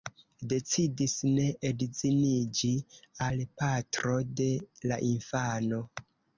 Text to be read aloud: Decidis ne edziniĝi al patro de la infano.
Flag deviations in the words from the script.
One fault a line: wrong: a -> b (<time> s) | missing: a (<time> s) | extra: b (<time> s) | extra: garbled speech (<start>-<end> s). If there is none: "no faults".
no faults